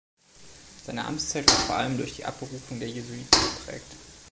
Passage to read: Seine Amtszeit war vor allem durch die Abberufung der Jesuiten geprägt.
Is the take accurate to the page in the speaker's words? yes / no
yes